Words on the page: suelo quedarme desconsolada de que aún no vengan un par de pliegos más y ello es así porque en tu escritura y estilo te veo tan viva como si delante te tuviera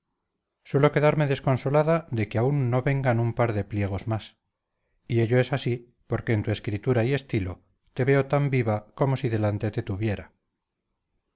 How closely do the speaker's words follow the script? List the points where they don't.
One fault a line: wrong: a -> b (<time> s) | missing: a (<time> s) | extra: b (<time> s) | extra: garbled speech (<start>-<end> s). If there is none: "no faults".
no faults